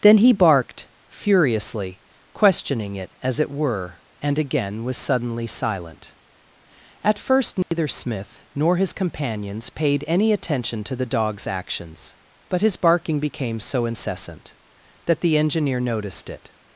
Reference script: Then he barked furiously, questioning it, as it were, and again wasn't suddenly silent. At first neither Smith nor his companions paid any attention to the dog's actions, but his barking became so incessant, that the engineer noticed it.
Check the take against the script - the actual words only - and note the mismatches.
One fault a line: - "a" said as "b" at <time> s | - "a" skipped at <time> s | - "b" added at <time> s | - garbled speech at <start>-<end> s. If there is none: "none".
- "wasn't" said as "was" at 4.8 s